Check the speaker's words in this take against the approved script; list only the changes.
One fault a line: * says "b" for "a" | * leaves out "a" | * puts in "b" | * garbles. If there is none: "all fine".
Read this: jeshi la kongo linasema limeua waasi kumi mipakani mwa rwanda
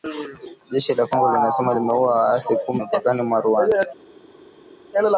all fine